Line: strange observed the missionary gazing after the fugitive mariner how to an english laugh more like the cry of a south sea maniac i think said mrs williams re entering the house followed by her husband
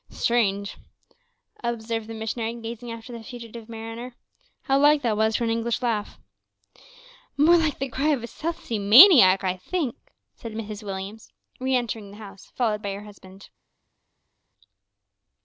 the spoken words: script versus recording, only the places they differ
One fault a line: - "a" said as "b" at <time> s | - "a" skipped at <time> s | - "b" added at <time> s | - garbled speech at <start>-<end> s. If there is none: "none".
- "like that was" added at 4.8 s